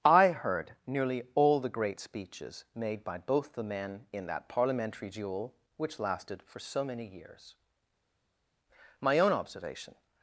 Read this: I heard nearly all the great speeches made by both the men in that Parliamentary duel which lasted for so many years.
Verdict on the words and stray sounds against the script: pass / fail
fail